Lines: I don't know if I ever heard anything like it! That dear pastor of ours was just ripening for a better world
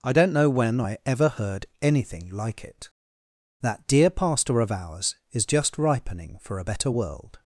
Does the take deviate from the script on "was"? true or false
true